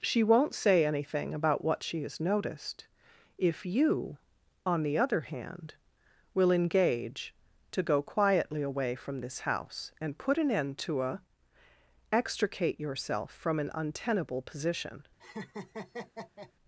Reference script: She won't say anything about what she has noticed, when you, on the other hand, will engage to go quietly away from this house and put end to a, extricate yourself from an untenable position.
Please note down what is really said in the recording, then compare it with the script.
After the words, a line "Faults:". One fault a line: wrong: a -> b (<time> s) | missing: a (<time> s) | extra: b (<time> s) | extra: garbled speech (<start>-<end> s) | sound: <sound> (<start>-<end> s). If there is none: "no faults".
She won't say anything about what she has noticed, if you, on the other hand, will engage to go quietly away from this house and put an end to a, extricate yourself from an untenable position.
Faults:
wrong: when -> if (3.4 s)
extra: an (10.4 s)
sound: laugh (15.2-16.5 s)